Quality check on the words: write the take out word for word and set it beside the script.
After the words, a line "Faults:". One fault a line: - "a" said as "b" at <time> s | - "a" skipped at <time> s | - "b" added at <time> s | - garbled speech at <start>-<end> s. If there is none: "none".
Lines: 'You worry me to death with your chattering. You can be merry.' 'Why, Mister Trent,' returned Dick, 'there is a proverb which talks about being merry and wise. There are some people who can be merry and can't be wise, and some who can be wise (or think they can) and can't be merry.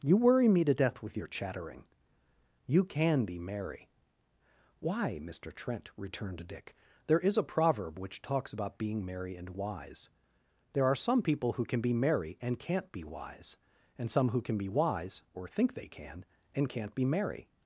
'You worry me to death with your chattering. You can be merry.' 'Why, Mister Trent,' returned Dick, 'there is a proverb which talks about being merry and wise. There are some people who can be merry and can't be wise, and some who can be wise (or think they can) and can't be merry.
Faults:
none